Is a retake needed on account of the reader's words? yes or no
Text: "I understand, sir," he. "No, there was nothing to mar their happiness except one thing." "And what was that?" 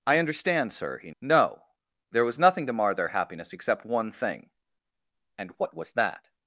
no